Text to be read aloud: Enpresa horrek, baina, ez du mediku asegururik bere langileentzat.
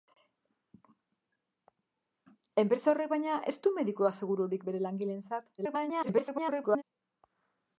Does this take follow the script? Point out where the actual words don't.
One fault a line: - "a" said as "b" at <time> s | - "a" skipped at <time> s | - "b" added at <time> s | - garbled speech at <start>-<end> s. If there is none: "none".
- garbled speech at 5.6-6.8 s